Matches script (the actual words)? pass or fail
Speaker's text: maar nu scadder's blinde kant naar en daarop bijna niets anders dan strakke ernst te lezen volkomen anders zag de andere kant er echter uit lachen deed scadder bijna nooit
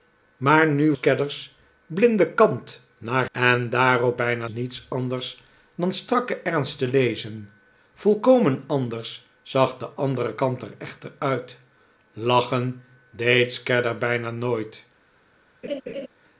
pass